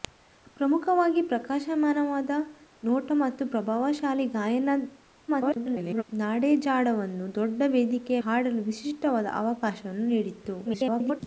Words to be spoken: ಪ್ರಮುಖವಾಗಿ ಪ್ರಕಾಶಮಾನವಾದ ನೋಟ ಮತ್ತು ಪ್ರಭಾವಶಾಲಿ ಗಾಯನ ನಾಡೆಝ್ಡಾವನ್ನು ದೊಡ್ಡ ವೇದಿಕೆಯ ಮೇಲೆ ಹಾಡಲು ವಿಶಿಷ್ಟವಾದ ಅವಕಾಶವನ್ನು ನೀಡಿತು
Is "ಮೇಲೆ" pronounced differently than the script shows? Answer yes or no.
yes